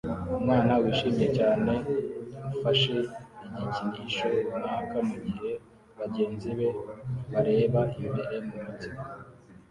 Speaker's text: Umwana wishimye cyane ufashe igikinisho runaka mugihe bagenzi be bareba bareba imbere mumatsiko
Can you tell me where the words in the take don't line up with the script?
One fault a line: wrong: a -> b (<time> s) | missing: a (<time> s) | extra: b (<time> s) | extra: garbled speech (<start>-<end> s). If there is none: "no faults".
missing: bareba (7.8 s)